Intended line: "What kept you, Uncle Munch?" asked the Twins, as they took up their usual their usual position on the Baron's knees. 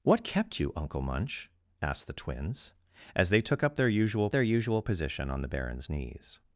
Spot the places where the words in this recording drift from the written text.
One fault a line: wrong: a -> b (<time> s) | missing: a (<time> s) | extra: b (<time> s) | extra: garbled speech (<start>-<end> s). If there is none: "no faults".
no faults